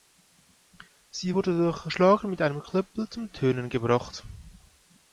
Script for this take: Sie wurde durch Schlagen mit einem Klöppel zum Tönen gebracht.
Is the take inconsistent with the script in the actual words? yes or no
no